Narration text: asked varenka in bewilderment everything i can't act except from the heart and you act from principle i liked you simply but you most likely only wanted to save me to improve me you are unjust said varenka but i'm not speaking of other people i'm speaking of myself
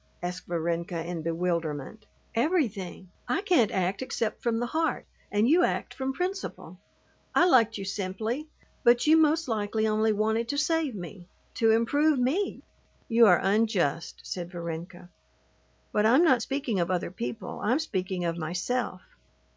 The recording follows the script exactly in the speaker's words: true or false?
true